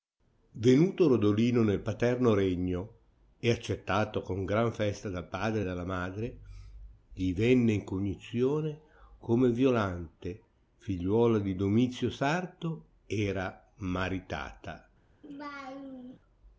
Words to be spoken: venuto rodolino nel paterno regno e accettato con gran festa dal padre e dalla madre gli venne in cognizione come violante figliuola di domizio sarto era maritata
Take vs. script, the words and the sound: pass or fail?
fail